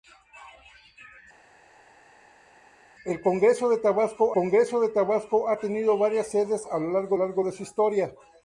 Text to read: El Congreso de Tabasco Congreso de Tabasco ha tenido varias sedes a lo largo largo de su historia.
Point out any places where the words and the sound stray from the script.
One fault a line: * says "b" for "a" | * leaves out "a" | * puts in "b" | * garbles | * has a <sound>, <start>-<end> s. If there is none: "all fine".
all fine